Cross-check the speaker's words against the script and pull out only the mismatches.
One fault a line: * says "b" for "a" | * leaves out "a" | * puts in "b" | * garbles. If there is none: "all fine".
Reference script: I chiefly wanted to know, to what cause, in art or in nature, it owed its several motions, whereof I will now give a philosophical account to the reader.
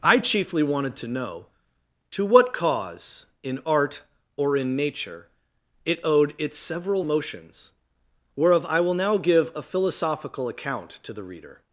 all fine